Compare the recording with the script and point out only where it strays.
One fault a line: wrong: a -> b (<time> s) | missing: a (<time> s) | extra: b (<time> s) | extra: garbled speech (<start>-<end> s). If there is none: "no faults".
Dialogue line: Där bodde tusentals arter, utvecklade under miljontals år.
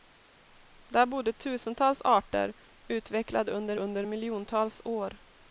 extra: under (3.8 s)